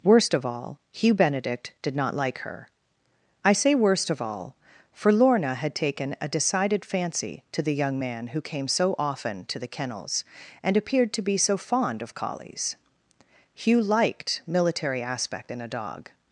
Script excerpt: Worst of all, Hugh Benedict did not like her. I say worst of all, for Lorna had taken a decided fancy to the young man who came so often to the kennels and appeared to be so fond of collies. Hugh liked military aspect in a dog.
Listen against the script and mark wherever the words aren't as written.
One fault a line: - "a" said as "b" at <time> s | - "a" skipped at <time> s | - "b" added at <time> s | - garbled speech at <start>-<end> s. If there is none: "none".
none